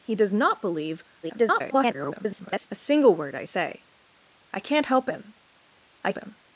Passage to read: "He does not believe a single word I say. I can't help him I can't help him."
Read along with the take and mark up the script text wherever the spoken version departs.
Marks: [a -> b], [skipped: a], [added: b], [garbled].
"He does not believe [garbled] a single word I say. I can't help him I [skipped: can't help] him."